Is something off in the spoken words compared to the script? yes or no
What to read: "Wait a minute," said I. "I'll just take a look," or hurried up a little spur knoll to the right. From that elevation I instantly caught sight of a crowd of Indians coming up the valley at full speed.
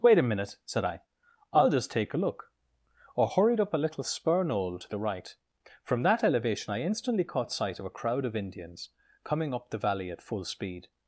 no